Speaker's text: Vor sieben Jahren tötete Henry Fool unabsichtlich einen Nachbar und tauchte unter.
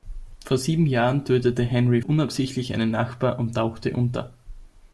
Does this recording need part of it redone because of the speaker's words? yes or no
yes